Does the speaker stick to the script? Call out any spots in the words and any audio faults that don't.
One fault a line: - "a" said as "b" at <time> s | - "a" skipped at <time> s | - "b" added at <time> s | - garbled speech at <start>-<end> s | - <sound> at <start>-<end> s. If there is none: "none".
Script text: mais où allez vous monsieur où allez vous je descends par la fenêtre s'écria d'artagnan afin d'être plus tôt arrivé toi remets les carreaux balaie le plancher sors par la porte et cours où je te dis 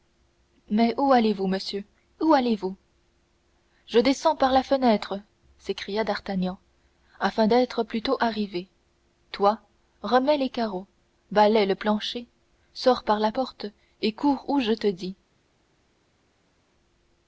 none